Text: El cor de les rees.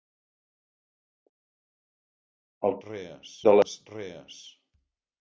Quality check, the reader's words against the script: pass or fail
fail